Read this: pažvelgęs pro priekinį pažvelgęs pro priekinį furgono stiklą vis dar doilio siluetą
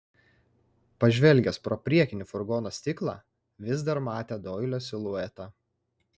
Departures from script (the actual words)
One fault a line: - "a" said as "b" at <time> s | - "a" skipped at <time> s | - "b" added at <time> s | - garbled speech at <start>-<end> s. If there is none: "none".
- "pažvelgęs pro priekinį" skipped at 2.3 s
- "matė" added at 4.1 s